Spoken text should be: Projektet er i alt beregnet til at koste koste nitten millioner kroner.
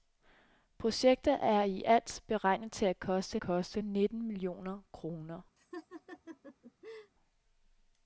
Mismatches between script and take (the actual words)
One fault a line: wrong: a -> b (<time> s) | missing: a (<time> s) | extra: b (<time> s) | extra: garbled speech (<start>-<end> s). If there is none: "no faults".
no faults